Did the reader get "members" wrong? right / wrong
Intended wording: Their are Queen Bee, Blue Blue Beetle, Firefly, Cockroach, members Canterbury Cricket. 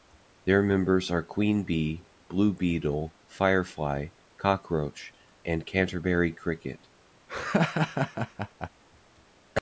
wrong